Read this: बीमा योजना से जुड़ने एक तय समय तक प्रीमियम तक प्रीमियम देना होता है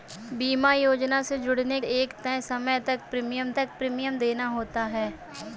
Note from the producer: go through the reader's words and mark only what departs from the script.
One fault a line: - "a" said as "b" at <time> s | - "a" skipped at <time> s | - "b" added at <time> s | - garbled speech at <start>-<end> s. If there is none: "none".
none